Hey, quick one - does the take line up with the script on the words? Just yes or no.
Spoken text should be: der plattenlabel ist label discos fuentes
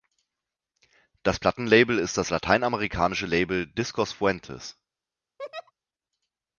no